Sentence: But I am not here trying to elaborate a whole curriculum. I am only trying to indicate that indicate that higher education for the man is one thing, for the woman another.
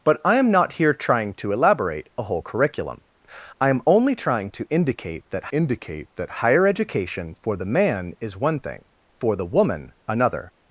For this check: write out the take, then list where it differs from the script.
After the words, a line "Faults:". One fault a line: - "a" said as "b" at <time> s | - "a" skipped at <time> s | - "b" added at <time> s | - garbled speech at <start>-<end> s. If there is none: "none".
But I am not here trying to elaborate a whole curriculum. I am only trying to indicate that indicate that higher education for the man is one thing, for the woman another.
Faults:
none